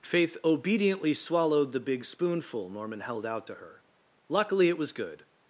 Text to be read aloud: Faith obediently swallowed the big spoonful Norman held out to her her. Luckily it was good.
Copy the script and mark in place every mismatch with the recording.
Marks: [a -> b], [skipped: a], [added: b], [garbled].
Faith obediently swallowed the big spoonful Norman held out to her [skipped: her.] Luckily it was good.